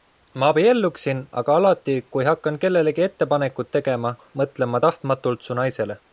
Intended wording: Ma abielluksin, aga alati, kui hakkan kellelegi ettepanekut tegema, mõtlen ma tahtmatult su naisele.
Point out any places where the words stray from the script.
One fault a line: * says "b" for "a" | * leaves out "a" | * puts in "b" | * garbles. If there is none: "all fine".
all fine